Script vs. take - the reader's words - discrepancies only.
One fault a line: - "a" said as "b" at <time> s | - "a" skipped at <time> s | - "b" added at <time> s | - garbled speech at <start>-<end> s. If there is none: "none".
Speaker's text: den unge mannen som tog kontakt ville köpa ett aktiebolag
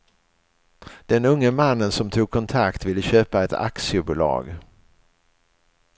none